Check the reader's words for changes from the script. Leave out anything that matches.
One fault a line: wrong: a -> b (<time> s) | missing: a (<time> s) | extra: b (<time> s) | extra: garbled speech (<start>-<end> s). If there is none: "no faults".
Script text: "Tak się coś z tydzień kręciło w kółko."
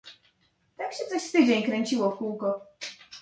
no faults